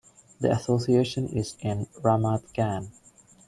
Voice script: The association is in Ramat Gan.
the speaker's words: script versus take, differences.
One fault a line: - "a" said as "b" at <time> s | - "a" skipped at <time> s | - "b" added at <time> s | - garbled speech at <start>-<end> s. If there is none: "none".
none